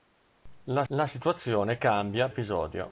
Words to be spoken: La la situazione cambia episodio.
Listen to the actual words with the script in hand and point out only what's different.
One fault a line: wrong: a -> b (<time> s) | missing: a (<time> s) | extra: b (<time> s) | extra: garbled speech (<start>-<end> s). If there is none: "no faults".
no faults